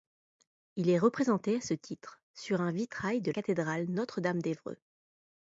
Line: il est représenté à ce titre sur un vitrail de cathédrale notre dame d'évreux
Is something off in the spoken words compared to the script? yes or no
no